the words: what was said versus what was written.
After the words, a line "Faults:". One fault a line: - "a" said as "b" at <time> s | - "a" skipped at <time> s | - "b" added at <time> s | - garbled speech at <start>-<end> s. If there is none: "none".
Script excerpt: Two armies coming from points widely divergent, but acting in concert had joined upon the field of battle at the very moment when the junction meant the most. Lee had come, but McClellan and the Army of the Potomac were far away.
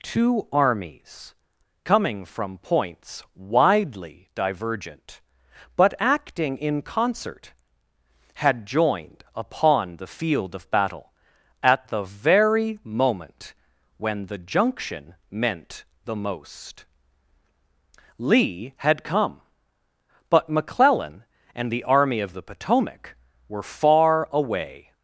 Two armies coming from points widely divergent, but acting in concert had joined upon the field of battle at the very moment when the junction meant the most. Lee had come, but McClellan and the Army of the Potomac were far away.
Faults:
none